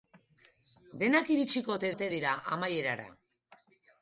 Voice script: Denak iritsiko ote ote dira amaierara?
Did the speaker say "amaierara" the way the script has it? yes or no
yes